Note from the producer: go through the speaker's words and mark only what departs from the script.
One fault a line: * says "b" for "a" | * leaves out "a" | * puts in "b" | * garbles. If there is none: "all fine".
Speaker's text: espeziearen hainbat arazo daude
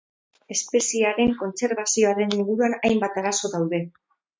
* puts in "kontserbazioaren inguruan"